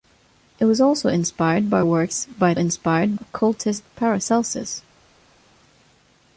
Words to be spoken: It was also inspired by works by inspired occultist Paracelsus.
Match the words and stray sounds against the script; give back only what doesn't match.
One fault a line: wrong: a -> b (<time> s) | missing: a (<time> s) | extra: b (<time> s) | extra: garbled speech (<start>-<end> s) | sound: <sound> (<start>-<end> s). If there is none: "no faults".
no faults